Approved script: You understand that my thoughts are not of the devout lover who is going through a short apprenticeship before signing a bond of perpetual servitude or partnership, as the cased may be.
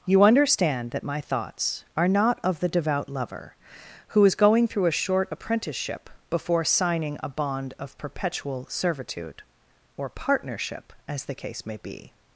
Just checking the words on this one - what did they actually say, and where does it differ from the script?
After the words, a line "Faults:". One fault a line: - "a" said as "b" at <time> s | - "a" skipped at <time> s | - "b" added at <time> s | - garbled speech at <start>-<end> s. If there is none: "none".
You understand that my thoughts are not of the devout lover who is going through a short apprenticeship before signing a bond of perpetual servitude or partnership, as the case may be.
Faults:
- "cased" said as "case" at 11.3 s